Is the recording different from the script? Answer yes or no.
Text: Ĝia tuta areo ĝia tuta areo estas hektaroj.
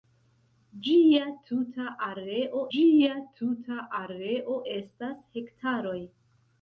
no